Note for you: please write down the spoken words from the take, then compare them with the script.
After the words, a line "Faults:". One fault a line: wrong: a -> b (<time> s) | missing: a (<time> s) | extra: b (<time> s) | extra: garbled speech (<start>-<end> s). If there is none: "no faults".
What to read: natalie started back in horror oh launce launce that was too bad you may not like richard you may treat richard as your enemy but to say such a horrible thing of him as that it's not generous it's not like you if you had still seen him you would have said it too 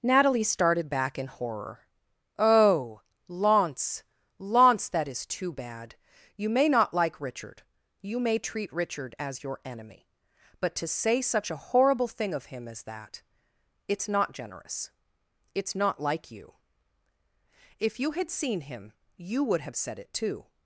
natalie started back in horror oh launce launce that is too bad you may not like richard you may treat richard as your enemy but to say such a horrible thing of him as that it's not generous it's not like you if you had seen him you would have said it too
Faults:
wrong: was -> is (5.1 s)
missing: still (18.3 s)